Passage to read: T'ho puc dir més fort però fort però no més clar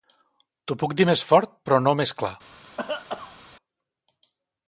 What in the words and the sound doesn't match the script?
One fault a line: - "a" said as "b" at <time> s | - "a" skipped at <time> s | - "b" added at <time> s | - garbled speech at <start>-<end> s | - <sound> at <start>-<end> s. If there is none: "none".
- "fort però" skipped at 1.8 s
- cough at 2.8-3.4 s